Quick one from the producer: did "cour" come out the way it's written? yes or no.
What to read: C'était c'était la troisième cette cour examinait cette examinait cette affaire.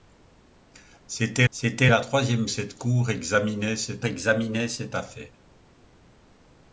yes